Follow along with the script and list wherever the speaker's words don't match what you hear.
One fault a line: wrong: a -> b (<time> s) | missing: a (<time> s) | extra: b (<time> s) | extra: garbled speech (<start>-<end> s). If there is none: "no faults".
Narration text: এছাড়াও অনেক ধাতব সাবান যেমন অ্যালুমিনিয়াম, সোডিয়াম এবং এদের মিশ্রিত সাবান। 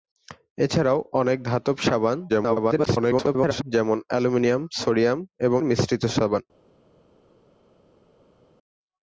extra: garbled speech (2.3-3.6 s)
missing: এদের (5.6 s)